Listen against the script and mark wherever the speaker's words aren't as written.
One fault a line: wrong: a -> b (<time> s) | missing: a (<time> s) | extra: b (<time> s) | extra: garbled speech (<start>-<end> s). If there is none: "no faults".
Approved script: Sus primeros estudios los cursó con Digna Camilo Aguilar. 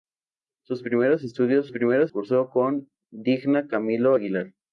wrong: los -> primeros (1.7 s)